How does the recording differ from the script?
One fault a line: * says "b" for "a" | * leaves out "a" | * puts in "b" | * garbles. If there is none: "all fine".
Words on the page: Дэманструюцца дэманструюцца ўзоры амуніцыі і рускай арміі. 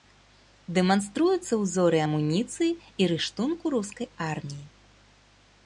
* leaves out "дэманструюцца"
* puts in "рыштунку"